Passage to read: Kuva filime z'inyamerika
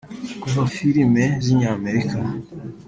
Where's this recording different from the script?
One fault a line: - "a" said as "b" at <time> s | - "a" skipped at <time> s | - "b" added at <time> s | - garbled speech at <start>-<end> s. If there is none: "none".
none